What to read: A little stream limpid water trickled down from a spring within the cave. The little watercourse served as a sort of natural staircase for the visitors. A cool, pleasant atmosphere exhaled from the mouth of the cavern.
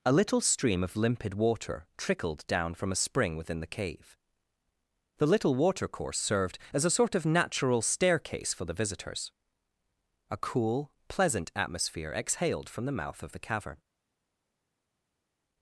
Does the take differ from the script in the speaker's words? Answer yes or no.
yes